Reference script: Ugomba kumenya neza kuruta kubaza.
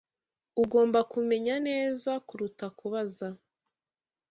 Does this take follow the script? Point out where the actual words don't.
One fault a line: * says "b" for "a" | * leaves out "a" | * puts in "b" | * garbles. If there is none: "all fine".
all fine